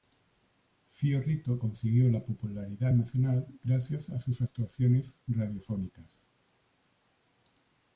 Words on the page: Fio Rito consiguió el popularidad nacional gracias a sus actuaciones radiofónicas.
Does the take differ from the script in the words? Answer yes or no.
yes